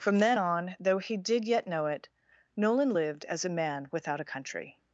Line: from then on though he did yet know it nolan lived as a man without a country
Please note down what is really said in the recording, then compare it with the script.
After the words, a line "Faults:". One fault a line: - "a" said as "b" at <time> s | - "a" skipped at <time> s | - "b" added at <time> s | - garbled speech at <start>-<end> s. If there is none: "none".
from then on though he did yet know it nolan lived as a man without a country
Faults:
none